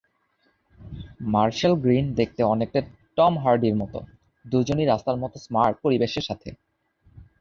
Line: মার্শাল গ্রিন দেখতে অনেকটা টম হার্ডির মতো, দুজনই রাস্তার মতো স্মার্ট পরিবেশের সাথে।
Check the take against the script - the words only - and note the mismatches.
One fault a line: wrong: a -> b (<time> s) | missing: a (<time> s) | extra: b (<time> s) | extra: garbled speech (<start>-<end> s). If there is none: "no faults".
no faults